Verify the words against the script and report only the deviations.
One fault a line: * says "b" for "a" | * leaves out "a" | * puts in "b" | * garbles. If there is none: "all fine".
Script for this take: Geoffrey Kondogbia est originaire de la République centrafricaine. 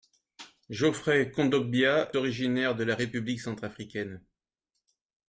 * leaves out "est"